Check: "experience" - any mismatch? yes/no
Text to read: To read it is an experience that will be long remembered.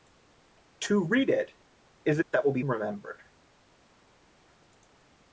yes